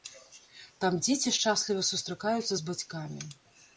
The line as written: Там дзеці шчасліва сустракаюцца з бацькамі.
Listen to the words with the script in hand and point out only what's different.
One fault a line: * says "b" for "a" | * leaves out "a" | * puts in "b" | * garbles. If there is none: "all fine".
all fine